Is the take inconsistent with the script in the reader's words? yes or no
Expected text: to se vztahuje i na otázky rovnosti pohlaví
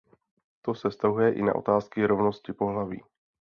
no